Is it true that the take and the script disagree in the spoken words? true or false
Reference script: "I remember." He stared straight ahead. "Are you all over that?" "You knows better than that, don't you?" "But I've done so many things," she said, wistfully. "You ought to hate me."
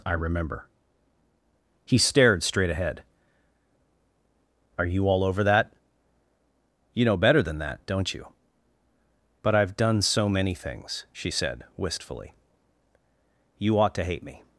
true